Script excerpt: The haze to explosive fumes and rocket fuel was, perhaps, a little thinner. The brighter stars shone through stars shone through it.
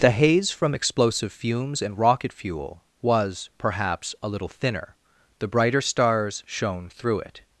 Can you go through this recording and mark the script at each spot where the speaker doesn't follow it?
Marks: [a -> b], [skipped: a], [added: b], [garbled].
The haze [to -> from] explosive fumes and rocket fuel was, perhaps, a little thinner. The brighter stars shone through [skipped: stars shone through] it.